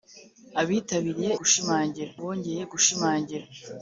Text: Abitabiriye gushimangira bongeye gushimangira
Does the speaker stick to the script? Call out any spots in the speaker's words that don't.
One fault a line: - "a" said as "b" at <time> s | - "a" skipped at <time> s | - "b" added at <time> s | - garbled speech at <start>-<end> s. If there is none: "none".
none